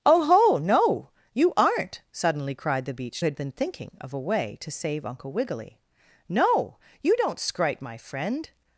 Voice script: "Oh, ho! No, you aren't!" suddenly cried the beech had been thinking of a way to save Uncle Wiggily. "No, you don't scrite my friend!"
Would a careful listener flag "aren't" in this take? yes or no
no